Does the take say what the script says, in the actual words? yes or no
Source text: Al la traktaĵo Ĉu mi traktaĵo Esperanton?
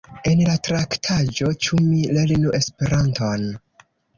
no